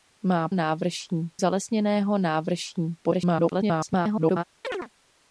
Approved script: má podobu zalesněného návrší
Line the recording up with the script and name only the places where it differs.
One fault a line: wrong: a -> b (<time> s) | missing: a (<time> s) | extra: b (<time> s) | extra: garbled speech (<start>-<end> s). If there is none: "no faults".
wrong: podobu -> návrší (0.5 s)
extra: garbled speech (3.0-4.4 s)